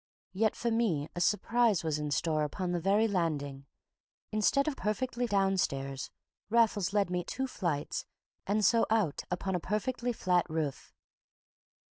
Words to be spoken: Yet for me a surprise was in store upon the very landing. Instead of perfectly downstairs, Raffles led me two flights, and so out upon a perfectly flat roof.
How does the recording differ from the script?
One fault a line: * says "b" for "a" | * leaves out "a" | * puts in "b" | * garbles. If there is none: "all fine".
all fine